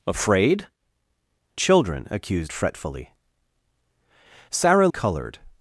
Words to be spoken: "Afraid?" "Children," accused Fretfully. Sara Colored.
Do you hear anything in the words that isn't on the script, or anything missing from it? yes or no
no